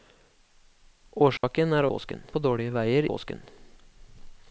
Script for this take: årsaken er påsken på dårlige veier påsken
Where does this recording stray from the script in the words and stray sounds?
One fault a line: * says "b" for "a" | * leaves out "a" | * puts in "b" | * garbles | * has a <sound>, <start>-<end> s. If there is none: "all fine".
* has a dropout, 1.4-1.4 s